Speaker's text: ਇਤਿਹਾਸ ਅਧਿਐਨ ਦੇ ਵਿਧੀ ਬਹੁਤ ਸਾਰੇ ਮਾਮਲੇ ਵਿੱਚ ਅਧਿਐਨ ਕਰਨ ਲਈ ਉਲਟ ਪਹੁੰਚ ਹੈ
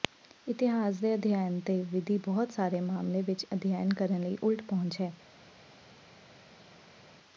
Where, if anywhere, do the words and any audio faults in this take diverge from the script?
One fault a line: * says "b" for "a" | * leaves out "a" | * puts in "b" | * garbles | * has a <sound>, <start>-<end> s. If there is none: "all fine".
* puts in "ਦੇ"